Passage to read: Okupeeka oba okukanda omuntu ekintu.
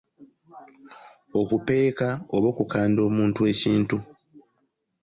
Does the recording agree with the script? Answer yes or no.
yes